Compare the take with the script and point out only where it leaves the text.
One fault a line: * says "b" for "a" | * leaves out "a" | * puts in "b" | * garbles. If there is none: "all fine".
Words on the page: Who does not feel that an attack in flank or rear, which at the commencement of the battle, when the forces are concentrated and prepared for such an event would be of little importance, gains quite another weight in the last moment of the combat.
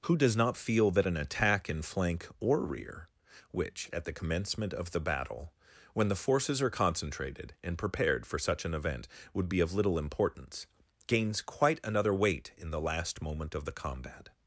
all fine